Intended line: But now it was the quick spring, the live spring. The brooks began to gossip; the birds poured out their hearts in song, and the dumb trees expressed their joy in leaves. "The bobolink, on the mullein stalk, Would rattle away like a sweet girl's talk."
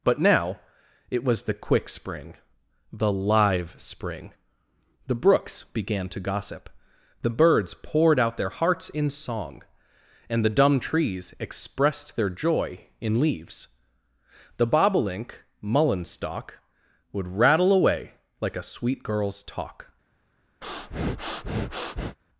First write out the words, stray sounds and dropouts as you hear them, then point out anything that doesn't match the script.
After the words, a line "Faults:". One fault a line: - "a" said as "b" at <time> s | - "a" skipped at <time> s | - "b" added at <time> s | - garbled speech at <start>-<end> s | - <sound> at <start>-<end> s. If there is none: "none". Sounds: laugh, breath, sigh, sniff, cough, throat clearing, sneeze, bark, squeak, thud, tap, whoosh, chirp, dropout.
But now it was the quick spring, the live spring. The brooks began to gossip; the birds poured out their hearts in song, and the dumb trees expressed their joy in leaves. "The bobolink, mullein stalk, Would rattle away like a sweet girl's talk."
Faults:
- "on the" skipped at 15.4 s
- breath at 20.6-22.2 s